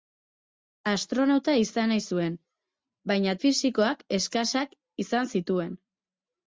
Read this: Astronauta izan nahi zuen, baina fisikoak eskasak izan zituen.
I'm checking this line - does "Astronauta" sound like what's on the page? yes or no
yes